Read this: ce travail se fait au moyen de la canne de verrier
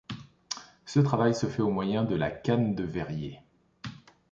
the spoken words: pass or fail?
pass